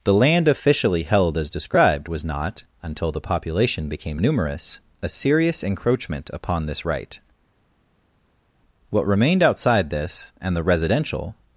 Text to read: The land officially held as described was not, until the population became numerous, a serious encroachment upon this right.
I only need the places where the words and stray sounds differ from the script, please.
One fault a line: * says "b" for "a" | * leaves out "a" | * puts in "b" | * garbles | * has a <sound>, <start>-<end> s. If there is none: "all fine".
* puts in "What remained outside this and the residential"